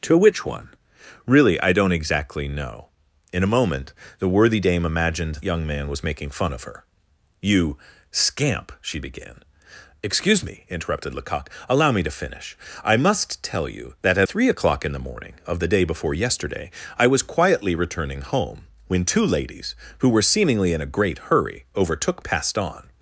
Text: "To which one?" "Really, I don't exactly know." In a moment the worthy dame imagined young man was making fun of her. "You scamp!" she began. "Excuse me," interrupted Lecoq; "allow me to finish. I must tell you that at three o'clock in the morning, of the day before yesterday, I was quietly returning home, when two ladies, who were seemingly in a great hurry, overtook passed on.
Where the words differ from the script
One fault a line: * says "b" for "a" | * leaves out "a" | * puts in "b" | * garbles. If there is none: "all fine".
all fine